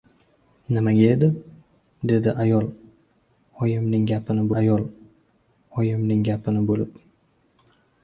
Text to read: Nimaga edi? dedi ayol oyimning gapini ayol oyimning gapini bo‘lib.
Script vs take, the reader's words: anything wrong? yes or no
no